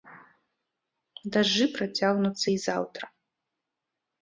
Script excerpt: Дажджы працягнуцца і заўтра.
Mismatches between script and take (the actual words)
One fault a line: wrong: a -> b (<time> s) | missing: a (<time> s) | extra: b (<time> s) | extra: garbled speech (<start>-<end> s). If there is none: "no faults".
no faults